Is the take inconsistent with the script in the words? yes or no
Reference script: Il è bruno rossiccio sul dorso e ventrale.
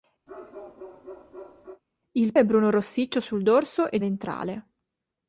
no